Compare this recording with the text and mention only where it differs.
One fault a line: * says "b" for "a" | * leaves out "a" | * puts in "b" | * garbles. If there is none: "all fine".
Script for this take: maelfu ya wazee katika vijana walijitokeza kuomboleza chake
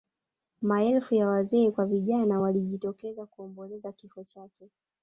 * says "kwa" for "katika"
* puts in "kifo"